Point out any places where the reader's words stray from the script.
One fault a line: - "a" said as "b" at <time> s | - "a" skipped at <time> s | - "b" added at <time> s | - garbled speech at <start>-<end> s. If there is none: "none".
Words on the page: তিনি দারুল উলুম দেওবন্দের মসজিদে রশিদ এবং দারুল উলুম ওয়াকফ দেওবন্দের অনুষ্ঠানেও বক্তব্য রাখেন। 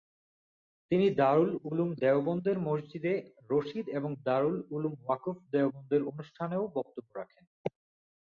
none